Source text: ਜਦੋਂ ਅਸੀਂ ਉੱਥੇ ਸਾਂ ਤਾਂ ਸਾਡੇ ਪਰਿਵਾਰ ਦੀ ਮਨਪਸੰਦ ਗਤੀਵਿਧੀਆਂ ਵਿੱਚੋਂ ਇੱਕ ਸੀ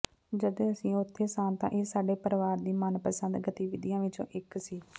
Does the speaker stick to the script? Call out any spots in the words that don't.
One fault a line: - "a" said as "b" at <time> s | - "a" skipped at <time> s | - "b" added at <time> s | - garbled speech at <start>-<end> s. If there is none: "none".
- "ਇਹ" added at 1.7 s